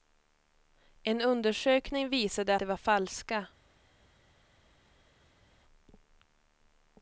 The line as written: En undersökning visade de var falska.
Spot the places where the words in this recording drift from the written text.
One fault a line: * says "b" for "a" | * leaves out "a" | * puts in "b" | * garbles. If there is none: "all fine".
all fine